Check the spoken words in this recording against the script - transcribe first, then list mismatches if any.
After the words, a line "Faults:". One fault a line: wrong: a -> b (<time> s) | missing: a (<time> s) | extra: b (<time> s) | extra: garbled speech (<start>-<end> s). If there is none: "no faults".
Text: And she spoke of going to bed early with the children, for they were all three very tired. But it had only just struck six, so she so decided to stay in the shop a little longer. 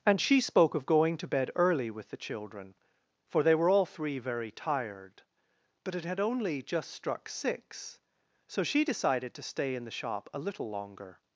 And she spoke of going to bed early with the children, for they were all three very tired. But it had only just struck six, so she decided to stay in the shop a little longer.
Faults:
missing: so (8.8 s)